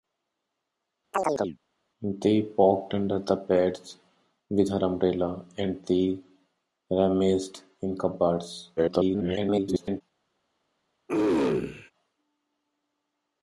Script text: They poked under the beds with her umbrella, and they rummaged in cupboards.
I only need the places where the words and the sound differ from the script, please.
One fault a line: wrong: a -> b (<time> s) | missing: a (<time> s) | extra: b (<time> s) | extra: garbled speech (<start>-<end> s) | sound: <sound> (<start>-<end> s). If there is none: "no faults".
sound: chirp (1.1-1.6 s)
extra: garbled speech (8.8-10.0 s)
sound: throat clearing (11.1-11.9 s)